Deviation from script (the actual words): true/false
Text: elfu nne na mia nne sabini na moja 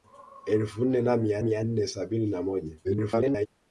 true